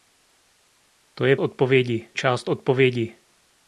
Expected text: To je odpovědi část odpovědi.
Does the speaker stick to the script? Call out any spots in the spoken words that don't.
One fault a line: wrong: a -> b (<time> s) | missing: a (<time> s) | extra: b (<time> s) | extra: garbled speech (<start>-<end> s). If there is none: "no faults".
no faults